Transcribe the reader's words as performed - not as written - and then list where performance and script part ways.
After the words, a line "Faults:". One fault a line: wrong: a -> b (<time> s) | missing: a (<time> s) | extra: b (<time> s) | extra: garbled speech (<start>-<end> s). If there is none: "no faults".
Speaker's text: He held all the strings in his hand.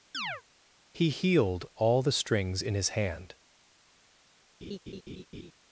He healed all the strings in his hand.
Faults:
wrong: held -> healed (1.1 s)